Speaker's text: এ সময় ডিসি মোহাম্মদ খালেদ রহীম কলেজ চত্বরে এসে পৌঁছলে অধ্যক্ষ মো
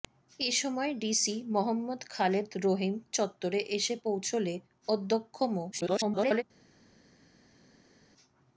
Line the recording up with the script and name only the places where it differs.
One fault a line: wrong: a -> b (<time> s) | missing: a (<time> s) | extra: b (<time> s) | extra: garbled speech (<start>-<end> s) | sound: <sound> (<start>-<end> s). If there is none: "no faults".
missing: কলেজ (2.9 s)
extra: garbled speech (5.7-6.4 s)